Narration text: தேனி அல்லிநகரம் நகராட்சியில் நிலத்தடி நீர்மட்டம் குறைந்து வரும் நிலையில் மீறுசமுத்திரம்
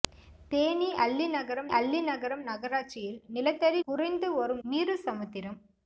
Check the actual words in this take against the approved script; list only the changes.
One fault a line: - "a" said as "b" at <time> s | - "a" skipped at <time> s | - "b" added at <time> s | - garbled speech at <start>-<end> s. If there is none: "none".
- "அல்லிநகரம்" added at 1.8 s
- "நீர்மட்டம்" skipped at 3.8 s
- "நிலையில்" skipped at 4.6 s